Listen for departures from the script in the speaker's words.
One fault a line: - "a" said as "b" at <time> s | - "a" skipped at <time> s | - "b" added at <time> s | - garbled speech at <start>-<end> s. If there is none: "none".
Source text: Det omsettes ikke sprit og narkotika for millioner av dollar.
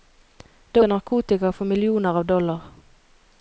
- "omsettes ikke sprit" skipped at 0.8 s